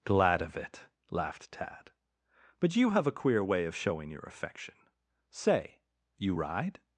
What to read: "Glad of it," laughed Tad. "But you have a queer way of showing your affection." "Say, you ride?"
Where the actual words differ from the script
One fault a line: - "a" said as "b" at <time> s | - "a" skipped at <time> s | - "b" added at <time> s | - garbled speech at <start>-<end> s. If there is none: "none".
none